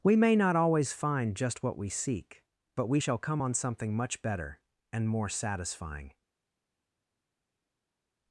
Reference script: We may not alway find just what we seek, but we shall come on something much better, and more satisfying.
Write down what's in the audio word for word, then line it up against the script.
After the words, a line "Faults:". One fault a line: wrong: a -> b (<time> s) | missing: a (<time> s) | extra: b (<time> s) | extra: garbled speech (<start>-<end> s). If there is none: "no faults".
We may not always find just what we seek, but we shall come on something much better, and more satisfying.
Faults:
wrong: alway -> always (0.6 s)